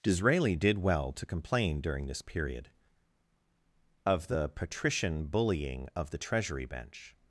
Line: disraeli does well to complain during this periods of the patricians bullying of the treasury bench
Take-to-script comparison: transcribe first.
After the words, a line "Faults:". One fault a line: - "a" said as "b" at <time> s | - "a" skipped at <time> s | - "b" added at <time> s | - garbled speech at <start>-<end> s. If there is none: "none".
disraeli did well to complain during this period of the patrician bullying of the treasury bench
Faults:
- "does" said as "did" at 0.6 s
- "periods" said as "period" at 2.2 s
- "patricians" said as "patrician" at 4.5 s